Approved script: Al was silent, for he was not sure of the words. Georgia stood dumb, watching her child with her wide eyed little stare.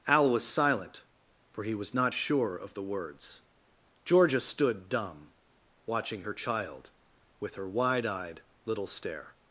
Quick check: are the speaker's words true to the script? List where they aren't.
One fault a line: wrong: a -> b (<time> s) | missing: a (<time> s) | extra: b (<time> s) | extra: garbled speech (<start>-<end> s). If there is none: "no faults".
no faults